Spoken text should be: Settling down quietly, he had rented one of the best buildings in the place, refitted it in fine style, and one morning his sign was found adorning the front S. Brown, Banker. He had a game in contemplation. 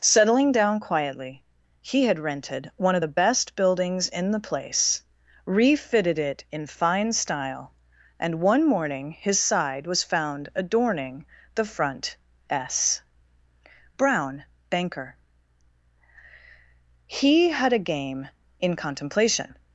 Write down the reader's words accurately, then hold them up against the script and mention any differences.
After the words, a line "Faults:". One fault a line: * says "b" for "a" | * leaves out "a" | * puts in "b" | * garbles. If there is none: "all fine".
Settling down quietly, he had rented one of the best buildings in the place, refitted it in fine style, and one morning his side was found adorning the front S. Brown, Banker. He had a game in contemplation.
Faults:
* says "side" for "sign"